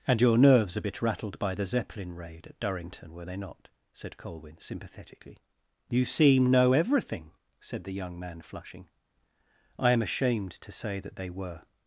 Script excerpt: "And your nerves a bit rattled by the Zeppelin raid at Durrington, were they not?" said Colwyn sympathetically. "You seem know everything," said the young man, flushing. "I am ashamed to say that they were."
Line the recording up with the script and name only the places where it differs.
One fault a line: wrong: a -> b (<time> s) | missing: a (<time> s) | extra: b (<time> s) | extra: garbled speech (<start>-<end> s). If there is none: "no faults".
no faults